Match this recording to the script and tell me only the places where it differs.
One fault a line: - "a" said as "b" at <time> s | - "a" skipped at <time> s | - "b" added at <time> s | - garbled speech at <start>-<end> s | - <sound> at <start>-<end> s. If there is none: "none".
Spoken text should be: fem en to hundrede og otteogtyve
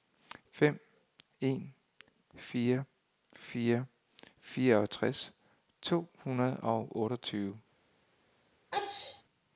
- "fire fire fireogtres" added at 2.4 s
- sneeze at 8.7-9.2 s